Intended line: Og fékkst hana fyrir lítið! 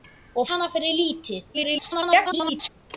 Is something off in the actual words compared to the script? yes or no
yes